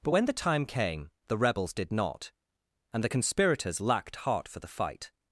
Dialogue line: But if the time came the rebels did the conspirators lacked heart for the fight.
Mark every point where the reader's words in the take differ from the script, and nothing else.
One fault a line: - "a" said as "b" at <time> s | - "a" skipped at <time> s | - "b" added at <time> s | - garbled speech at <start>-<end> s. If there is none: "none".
- "if" said as "when" at 0.1 s
- "not and" added at 1.9 s